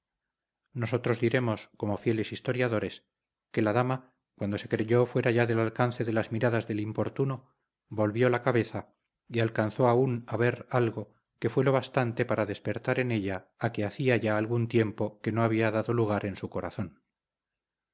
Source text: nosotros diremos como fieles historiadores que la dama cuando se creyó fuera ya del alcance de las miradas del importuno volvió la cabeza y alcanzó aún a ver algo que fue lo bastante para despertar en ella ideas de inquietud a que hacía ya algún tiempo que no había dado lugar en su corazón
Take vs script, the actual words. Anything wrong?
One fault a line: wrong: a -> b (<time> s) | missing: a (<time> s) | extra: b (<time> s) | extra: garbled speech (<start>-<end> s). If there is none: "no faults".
missing: ideas de inquietud (13.5 s)